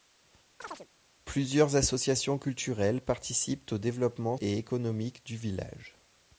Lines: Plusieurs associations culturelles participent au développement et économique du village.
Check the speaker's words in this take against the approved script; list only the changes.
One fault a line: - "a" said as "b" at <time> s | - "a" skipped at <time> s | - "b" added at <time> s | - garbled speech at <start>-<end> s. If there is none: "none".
none